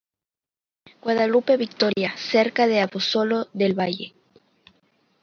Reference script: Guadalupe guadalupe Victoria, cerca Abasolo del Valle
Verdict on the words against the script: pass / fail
fail